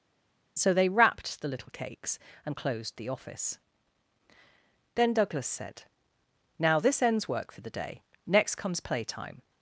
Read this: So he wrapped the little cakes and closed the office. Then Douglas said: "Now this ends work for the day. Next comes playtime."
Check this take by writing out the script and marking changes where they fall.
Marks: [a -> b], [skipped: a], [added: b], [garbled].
So [he -> they] wrapped the little cakes and closed the office. Then Douglas said: "Now this ends work for the day. Next comes playtime."